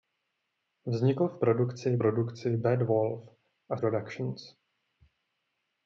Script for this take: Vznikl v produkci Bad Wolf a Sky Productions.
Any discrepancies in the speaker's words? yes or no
yes